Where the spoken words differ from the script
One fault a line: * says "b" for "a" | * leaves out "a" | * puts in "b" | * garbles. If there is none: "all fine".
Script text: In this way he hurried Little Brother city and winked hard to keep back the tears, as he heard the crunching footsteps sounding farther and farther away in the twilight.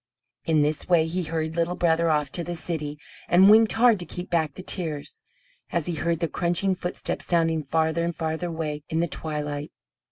* puts in "off to the"